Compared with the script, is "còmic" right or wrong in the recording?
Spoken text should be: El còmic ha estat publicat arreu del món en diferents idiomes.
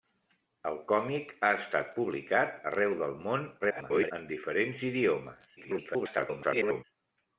right